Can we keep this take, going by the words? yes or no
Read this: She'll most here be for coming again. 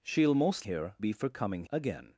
yes